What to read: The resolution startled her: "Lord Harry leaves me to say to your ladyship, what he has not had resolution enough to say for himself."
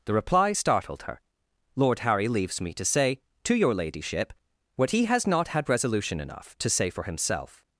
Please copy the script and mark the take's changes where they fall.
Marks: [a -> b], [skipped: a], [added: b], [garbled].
The [resolution -> reply] startled her: "Lord Harry leaves me to say to your ladyship, what he has not had resolution enough to say for himself."